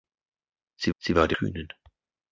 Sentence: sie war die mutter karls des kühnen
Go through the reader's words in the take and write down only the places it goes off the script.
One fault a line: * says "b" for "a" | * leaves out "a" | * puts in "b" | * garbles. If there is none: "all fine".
* puts in "sie"
* leaves out "mutter karls des"